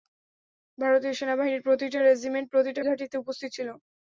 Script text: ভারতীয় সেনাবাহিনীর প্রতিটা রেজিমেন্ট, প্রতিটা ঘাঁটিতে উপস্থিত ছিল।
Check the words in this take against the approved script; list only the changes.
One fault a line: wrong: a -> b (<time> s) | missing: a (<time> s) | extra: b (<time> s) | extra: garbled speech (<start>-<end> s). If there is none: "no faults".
no faults